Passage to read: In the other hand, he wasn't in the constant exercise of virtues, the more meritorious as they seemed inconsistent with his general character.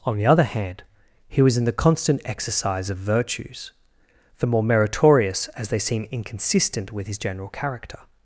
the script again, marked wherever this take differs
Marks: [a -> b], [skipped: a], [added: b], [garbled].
[In -> On] the other hand, he [wasn't -> was] in the constant exercise of virtues, the more meritorious as they [seemed -> seem] inconsistent with his general character.